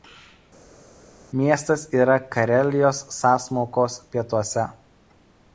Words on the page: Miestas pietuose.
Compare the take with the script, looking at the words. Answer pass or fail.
fail